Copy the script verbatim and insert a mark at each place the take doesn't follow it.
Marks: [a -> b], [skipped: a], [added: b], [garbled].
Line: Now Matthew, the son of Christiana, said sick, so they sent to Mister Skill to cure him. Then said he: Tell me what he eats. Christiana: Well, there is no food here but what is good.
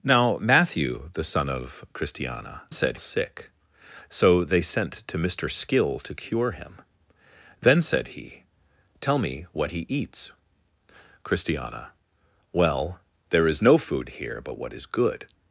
Now Matthew, the son of Christiana, said sick, so they sent to Mister Skill to cure him. Then said he: Tell me what he eats. Christiana: Well, there is no food here but what is good.